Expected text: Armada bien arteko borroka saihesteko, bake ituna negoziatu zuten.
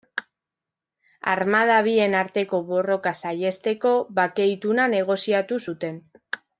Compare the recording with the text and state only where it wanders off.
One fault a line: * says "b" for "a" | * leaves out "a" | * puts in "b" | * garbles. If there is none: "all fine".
all fine